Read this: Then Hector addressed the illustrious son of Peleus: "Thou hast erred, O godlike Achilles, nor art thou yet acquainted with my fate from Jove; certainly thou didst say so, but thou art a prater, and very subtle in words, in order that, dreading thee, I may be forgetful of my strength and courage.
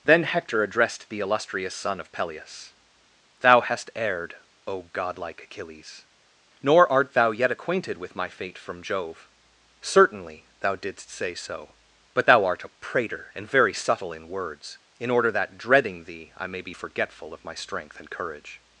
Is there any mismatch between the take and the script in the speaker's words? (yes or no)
no